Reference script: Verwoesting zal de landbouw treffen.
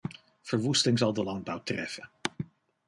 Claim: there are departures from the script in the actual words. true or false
false